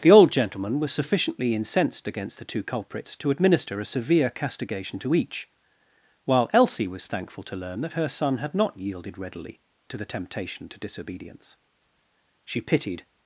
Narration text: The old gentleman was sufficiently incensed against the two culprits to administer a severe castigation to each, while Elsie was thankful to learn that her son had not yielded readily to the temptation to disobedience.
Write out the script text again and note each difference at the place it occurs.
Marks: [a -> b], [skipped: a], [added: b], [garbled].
The old gentleman was sufficiently incensed against the two culprits to administer a severe castigation to each, while Elsie was thankful to learn that her son had not yielded readily to the temptation to disobedience. [added: She pitied]